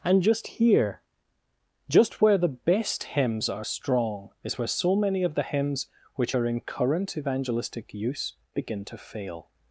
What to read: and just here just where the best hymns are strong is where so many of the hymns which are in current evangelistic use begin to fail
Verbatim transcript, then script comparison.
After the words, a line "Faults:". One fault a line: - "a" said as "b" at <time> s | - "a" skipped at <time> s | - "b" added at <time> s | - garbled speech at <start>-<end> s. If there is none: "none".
and just here just where the best hymns are strong is where so many of the hymns which are in current evangelistic use begin to fail
Faults:
none